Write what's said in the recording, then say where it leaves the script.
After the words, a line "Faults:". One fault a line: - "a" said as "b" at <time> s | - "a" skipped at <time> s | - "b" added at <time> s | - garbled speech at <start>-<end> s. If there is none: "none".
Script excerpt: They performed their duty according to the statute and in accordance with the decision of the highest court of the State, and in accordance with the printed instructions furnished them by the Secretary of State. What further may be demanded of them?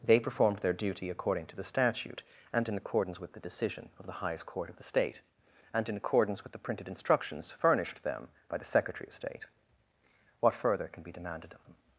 They performed their duty according to the statute and in accordance with the decision of the highest court of the State, and in accordance with the printed instructions furnished them by the Secretary of State. What further can be demanded of them?
Faults:
- "may" said as "can" at 10.9 s